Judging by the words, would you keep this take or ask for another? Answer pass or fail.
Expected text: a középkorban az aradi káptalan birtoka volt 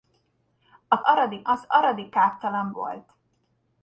fail